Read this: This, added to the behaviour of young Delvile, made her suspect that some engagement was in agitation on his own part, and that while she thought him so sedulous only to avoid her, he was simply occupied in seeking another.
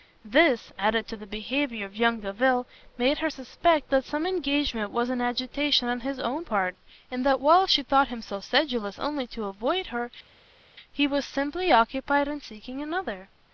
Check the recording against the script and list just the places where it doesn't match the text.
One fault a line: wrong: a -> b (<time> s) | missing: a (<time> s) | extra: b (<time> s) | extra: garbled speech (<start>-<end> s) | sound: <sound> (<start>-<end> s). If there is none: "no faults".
no faults